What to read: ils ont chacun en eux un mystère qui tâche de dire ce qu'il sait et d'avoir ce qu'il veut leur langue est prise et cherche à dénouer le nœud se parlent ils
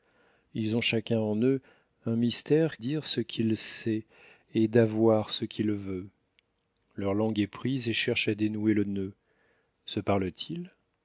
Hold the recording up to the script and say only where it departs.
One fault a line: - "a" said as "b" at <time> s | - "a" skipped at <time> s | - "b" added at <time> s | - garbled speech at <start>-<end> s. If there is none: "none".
- "qui tâche de" skipped at 2.8 s